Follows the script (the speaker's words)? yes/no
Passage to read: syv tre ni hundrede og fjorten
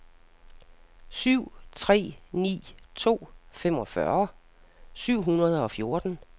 no